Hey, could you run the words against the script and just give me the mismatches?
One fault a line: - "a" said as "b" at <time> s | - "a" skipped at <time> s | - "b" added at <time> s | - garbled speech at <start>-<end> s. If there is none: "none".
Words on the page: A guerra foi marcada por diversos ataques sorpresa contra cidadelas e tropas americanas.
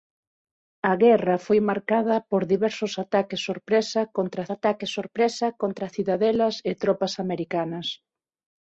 - "ataques sorpresa contra" added at 4.5 s